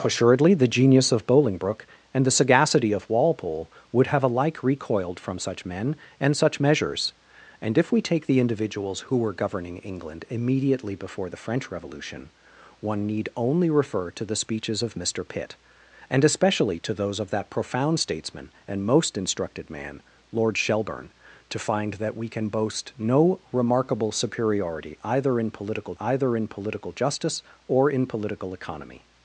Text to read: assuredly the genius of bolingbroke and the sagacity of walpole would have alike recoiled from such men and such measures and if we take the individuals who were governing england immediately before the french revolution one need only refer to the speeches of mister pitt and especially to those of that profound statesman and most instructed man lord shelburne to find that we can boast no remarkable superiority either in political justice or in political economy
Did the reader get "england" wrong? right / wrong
right